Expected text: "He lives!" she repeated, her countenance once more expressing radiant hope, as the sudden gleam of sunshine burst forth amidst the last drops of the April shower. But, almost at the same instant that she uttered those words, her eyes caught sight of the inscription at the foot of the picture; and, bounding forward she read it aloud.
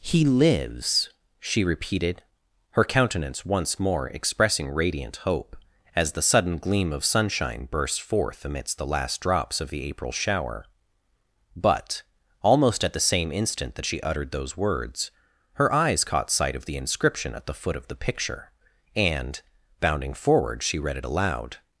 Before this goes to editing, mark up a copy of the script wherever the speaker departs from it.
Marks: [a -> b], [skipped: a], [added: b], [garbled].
"He lives!" she repeated, her countenance once more expressing radiant hope, as the sudden gleam of sunshine burst forth amidst the last drops of the April shower. But, almost at the same instant that she uttered those words, her eyes caught sight of the inscription at the foot of the picture; and, bounding forward she read it aloud.